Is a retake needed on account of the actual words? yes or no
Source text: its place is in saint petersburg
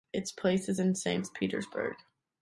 no